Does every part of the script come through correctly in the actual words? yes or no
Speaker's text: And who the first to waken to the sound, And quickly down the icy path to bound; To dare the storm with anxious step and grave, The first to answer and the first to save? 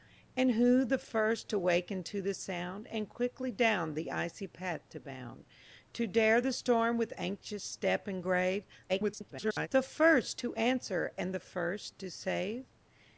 no